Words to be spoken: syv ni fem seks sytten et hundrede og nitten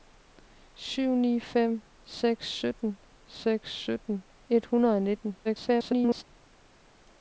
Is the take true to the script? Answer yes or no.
no